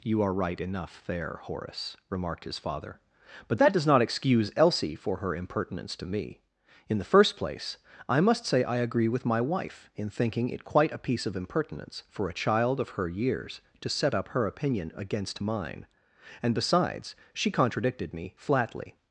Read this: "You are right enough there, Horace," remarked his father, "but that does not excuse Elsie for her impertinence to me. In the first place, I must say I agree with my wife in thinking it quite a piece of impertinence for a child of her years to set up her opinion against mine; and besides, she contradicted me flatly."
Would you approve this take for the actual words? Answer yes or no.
yes